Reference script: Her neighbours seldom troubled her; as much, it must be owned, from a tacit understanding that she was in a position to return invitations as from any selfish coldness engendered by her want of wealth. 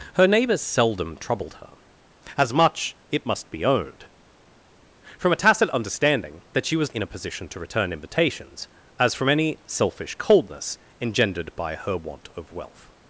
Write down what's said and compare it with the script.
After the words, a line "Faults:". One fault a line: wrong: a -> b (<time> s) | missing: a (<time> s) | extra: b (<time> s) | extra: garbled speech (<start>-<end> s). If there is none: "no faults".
Her neighbours seldom troubled her; as much, it must be owned, from a tacit understanding that she was in a position to return invitations as from any selfish coldness engendered by her want of wealth.
Faults:
no faults